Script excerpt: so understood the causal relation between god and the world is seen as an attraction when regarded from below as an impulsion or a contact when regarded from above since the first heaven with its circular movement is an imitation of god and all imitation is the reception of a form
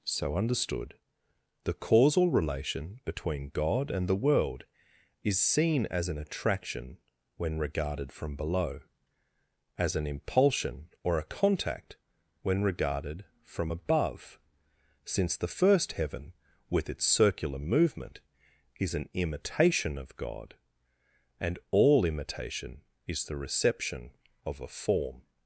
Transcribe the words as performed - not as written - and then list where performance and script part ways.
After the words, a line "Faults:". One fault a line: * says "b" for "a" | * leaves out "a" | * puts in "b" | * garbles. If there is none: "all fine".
so understood the causal relation between god and the world is seen as an attraction when regarded from below as an impulsion or a contact when regarded from above since the first heaven with its circular movement is an imitation of god and all imitation is the reception of a form
Faults:
all fine